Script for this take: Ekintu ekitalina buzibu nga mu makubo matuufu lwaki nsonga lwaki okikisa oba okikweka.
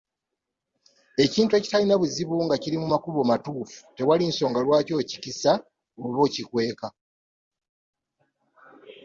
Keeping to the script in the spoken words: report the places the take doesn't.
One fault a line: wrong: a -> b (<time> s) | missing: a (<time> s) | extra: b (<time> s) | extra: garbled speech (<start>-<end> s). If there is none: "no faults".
extra: kiri (2.6 s)
wrong: lwaki -> tewali (4.0 s)